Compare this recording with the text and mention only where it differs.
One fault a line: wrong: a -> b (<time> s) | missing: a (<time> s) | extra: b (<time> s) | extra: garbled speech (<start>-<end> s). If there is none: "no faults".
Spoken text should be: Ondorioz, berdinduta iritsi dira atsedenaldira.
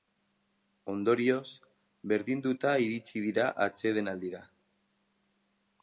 no faults